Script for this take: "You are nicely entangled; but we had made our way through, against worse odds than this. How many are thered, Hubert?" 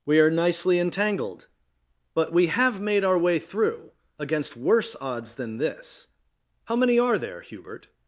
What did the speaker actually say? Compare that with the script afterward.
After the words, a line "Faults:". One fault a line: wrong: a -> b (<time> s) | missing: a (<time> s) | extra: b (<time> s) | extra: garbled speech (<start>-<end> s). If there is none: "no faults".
"We are nicely entangled; but we have made our way through, against worse odds than this. How many are there, Hubert?"
Faults:
wrong: You -> We (0.1 s)
wrong: had -> have (2.5 s)
wrong: thered -> there (7.2 s)